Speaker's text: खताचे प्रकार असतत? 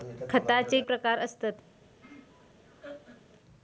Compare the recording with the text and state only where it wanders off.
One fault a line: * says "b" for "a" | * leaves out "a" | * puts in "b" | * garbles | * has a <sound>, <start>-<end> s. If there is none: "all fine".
* has a laugh, 2.0-3.3 s